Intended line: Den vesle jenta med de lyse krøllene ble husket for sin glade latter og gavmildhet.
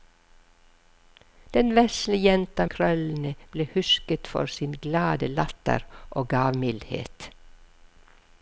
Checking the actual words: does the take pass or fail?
fail